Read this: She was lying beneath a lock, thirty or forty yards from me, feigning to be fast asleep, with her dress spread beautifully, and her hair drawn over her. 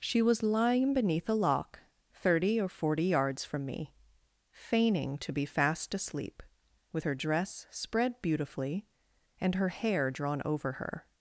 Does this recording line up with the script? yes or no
yes